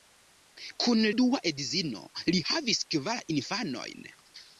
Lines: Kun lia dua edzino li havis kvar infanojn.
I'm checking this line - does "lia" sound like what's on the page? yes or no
no